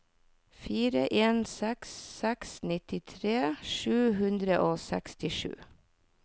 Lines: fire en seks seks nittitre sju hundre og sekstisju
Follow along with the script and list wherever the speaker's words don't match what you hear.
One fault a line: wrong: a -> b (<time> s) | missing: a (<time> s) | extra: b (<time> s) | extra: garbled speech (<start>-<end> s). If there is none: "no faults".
no faults